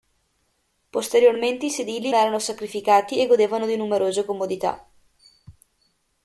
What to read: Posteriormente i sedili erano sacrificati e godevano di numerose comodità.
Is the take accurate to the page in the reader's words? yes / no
yes